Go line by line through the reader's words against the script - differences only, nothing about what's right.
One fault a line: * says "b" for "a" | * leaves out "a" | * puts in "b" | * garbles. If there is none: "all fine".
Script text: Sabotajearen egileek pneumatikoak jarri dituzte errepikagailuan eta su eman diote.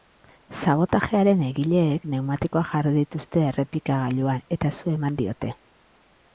all fine